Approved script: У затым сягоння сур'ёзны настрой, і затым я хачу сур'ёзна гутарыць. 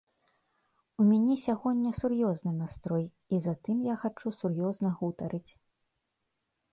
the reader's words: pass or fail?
fail